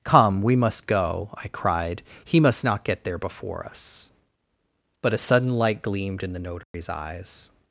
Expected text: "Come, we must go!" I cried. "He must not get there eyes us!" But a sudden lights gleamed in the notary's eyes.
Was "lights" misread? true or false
true